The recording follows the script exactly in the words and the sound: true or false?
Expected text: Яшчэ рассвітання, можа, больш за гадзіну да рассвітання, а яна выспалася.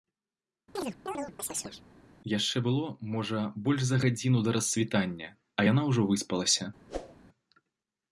false